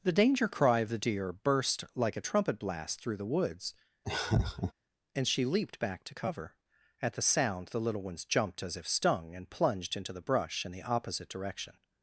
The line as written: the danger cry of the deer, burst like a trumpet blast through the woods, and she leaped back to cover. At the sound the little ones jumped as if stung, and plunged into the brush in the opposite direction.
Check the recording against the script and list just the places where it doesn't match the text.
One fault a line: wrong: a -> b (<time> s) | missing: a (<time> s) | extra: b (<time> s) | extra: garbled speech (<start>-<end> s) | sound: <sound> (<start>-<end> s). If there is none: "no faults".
sound: laugh (4.0-4.7 s)